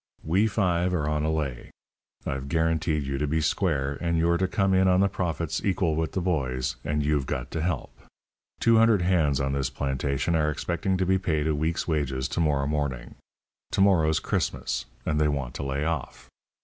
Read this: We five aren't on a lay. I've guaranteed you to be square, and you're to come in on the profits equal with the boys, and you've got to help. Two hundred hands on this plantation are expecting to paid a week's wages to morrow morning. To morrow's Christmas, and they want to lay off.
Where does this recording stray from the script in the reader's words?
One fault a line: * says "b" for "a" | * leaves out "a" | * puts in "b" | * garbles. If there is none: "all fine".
* says "are" for "aren't"
* puts in "be"